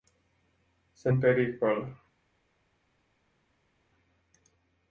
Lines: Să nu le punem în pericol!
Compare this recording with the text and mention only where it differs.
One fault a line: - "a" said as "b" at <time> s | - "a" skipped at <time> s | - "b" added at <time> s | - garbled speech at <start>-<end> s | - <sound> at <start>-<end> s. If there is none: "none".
- "nu le punem" skipped at 1.1 s